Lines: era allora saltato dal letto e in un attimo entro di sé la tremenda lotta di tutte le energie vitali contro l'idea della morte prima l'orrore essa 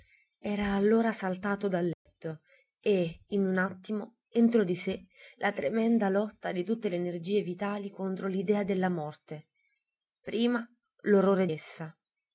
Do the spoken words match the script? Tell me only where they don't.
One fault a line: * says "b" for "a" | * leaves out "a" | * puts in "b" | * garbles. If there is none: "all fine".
all fine